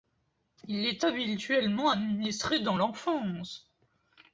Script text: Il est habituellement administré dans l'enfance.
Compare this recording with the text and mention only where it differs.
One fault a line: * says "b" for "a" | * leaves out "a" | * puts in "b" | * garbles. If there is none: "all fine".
all fine